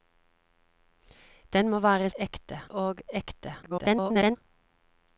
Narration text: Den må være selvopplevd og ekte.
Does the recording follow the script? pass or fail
fail